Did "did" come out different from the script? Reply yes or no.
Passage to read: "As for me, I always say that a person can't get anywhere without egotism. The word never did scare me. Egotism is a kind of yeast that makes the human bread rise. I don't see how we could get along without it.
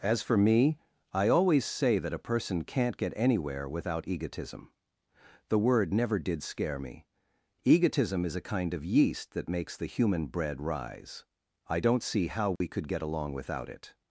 no